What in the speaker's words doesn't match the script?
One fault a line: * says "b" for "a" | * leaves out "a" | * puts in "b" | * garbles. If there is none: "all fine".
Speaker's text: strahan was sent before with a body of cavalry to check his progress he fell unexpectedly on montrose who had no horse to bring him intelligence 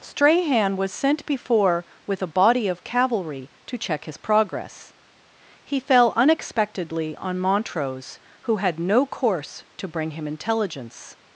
* says "course" for "horse"